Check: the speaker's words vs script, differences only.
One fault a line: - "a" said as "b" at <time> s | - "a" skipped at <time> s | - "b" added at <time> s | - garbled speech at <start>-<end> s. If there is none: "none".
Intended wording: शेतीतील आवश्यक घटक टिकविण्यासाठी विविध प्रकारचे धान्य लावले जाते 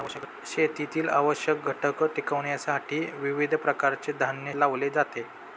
none